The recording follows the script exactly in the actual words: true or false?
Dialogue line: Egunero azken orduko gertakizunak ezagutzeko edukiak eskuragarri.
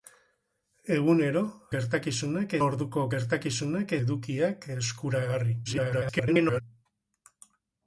false